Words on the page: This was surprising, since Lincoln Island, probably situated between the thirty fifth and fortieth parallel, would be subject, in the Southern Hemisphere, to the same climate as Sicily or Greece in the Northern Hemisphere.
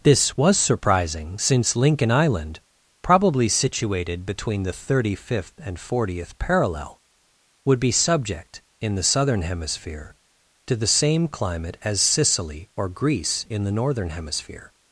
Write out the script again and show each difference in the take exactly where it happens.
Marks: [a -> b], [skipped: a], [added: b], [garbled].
This was surprising, since Lincoln Island, probably situated between the thirty fifth and fortieth parallel, would be subject, in the Southern Hemisphere, to the same climate as Sicily or Greece in the Northern Hemisphere.